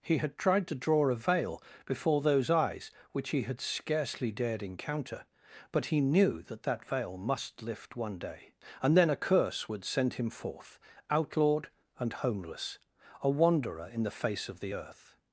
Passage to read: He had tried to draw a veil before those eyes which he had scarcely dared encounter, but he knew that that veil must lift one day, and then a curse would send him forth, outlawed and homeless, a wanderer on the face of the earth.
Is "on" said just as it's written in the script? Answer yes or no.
no